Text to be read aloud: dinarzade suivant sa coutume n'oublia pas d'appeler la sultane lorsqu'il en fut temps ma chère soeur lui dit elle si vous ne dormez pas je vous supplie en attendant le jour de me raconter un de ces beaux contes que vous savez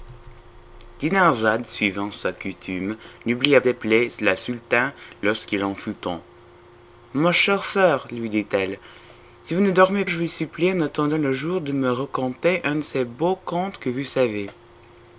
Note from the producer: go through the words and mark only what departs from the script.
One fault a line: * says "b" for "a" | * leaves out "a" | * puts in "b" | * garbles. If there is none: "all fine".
* leaves out "pas"
* leaves out "pas"